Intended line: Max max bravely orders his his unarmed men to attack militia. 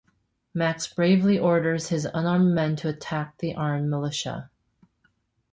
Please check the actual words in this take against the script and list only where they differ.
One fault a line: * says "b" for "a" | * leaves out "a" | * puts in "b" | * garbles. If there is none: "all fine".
* leaves out "max"
* leaves out "his"
* puts in "the armed"